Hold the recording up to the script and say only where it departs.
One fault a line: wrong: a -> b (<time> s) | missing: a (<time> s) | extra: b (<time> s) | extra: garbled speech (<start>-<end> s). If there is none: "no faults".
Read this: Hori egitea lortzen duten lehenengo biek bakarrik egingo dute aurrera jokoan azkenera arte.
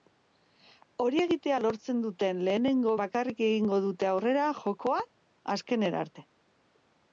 missing: biek (3.0 s)